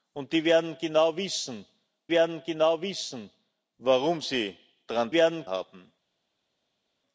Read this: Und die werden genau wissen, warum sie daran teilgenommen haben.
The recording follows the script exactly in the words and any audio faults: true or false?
false